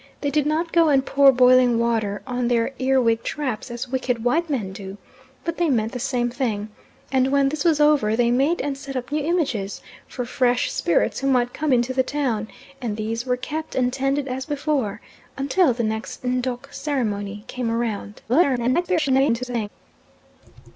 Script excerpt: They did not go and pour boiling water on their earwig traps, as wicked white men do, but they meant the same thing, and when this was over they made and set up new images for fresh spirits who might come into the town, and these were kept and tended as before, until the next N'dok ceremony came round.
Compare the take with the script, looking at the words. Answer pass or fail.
fail